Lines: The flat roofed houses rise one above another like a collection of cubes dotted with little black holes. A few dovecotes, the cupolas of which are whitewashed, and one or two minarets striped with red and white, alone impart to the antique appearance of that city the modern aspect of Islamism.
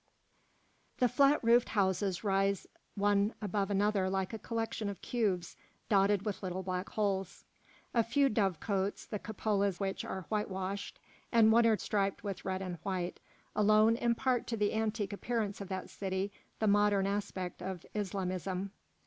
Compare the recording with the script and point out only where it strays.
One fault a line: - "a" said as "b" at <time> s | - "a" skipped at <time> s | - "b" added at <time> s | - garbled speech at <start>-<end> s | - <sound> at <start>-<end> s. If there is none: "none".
- "of" skipped at 9.8 s
- "two minarets" skipped at 11.8 s